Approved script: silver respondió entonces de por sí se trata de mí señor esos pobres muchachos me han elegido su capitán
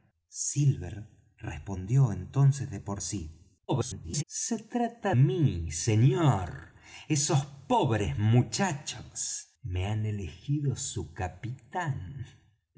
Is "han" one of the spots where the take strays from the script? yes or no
no